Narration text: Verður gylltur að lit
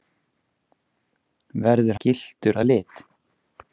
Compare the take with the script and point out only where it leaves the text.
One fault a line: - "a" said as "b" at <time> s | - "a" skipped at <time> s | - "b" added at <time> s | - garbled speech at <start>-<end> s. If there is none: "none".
none